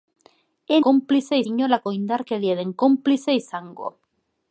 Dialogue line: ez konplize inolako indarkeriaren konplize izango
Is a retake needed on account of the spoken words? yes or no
no